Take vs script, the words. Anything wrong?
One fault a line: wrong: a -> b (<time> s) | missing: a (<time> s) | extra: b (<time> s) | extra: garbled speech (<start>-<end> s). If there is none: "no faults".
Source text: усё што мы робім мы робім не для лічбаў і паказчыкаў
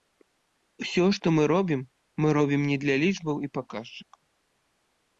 no faults